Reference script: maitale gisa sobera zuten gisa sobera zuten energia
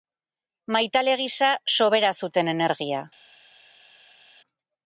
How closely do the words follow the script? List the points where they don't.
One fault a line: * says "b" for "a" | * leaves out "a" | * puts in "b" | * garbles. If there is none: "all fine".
* leaves out "gisa sobera zuten"